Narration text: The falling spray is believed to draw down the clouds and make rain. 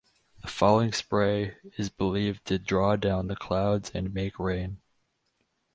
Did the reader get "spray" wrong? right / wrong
right